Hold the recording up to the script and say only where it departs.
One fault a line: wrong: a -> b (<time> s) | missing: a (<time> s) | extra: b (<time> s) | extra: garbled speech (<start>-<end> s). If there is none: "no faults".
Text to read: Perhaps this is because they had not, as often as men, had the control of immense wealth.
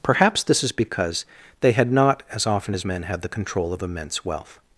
no faults